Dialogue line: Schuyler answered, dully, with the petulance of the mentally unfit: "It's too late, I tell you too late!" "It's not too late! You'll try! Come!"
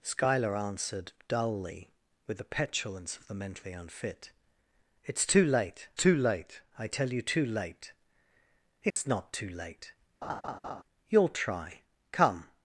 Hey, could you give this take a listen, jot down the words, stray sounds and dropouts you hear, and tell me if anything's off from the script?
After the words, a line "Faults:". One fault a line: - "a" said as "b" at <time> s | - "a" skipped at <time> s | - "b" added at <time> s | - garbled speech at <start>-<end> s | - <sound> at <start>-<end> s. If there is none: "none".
Schuyler answered, dully, with the petulance of the mentally unfit: "It's too late too late, I tell you too late!" "It's not too late! You'll try! Come!"
Faults:
- "too late" added at 6.0 s
- dropout at 8.9-9.0 s
- laugh at 10.2-10.8 s